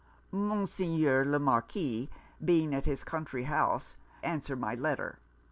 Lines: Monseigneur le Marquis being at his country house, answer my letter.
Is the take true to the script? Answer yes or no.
yes